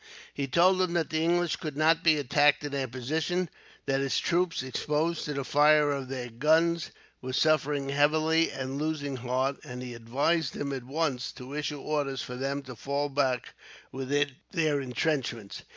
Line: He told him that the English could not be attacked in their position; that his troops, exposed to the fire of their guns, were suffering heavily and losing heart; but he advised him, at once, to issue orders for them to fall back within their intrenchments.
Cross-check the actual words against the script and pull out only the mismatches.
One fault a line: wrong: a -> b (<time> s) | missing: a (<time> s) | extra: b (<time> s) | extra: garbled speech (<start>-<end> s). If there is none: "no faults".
wrong: but -> and (9.6 s)